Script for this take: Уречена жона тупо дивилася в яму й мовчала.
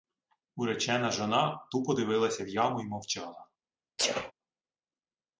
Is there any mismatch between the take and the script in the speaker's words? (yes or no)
no